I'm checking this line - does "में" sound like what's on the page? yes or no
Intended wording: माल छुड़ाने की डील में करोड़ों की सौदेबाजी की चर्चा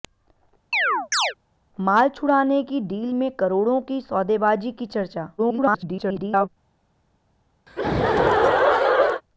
yes